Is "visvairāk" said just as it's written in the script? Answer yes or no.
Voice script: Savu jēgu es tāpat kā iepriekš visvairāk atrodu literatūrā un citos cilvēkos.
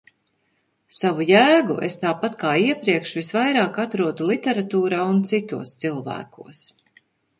yes